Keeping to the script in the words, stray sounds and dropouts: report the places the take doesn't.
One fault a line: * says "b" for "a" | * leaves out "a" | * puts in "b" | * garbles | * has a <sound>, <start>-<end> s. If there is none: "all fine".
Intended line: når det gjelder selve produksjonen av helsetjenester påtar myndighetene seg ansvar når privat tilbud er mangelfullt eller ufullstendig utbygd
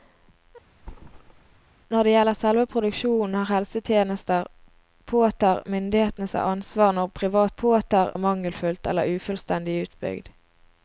* has a thud, 0.8-1.7 s
* says "påtar" for "tilbud"